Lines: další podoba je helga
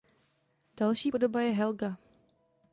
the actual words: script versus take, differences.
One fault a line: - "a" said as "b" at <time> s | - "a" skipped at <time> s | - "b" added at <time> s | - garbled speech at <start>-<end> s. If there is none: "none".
none